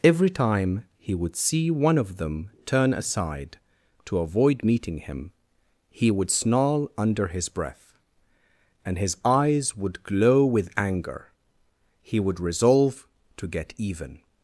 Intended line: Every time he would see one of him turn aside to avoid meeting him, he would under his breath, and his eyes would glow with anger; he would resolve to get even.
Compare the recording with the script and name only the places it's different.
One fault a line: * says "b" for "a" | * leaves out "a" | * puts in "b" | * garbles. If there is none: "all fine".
* says "them" for "him"
* puts in "snarl"